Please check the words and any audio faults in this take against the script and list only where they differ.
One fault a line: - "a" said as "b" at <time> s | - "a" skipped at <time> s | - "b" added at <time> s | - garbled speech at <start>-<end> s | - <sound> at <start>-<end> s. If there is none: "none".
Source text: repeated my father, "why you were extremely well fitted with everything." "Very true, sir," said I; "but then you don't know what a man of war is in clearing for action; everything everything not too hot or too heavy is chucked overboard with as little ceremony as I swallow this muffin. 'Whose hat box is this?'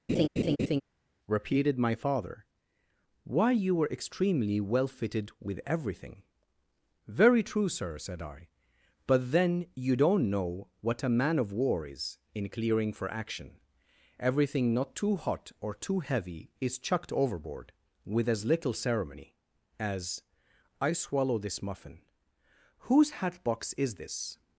- laugh at 0.1-0.8 s
- "everything" skipped at 14.7 s